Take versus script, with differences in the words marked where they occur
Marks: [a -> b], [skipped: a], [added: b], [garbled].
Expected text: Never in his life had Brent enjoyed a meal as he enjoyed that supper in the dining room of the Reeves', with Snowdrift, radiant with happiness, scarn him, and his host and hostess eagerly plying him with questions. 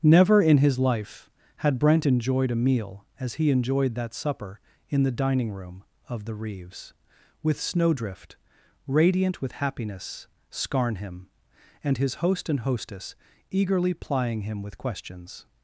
Never in his life had Brent enjoyed a meal as he enjoyed that supper in the dining room of the Reeves', with Snowdrift, radiant with happiness, scarn him, and his host and hostess eagerly plying him with questions.